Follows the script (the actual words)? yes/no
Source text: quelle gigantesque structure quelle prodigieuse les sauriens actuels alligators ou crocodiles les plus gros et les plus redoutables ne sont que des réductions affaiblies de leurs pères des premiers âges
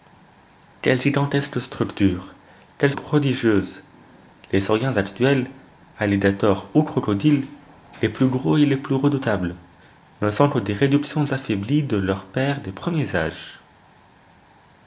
yes